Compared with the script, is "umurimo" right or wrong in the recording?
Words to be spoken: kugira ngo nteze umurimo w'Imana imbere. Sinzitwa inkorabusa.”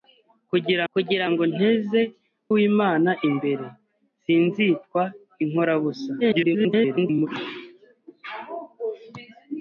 wrong